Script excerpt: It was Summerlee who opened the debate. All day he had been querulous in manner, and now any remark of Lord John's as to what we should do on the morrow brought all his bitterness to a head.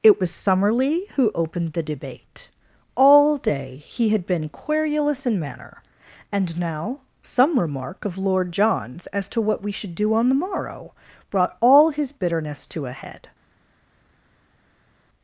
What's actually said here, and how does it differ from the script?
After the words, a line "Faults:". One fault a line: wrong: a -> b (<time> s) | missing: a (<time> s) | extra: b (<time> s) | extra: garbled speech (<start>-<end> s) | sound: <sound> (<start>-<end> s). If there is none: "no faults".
It was Summerlee who opened the debate. All day he had been querulous in manner, and now some remark of Lord John's as to what we should do on the morrow brought all his bitterness to a head.
Faults:
wrong: any -> some (7.2 s)